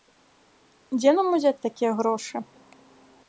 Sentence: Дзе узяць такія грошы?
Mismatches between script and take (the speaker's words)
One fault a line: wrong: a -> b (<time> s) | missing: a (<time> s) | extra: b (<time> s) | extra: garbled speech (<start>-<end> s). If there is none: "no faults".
extra: нам (1.2 s)